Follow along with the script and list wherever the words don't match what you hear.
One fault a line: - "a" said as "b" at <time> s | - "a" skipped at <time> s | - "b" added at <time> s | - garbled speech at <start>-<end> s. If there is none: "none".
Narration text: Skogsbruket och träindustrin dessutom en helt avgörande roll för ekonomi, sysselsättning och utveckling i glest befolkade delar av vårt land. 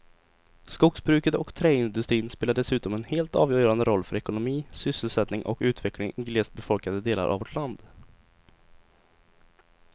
- "spelar" added at 2.3 s